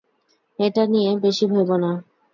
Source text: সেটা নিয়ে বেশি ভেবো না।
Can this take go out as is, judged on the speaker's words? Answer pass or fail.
fail